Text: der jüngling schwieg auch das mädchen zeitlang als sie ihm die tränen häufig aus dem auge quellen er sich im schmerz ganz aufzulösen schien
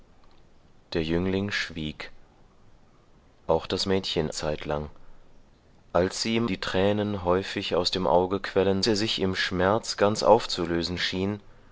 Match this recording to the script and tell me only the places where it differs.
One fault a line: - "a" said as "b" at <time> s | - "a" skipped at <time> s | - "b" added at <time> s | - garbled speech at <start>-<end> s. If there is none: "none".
none